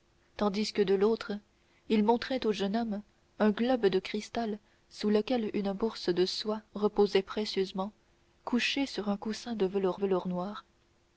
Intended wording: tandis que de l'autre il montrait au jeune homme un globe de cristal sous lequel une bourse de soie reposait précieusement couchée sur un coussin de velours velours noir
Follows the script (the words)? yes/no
yes